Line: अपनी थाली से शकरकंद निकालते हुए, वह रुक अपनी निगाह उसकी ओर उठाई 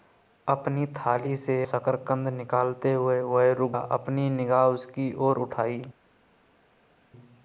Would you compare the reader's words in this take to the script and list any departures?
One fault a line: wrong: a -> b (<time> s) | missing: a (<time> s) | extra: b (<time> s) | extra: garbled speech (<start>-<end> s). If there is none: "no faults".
no faults